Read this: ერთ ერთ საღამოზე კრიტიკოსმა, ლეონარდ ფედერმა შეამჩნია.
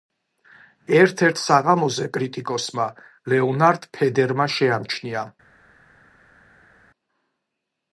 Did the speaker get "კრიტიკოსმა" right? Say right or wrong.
right